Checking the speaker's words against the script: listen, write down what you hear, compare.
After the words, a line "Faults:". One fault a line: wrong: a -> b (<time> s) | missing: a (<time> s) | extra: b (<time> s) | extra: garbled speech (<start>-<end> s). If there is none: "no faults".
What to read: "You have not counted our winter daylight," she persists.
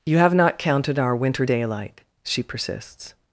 "You have not counted our winter daylight," she persists.
Faults:
no faults